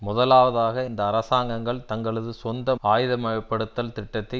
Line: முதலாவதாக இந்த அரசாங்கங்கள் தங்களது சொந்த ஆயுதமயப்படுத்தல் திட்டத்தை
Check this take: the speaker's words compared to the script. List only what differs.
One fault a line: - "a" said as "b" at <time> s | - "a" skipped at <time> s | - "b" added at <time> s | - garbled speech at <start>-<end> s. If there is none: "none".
none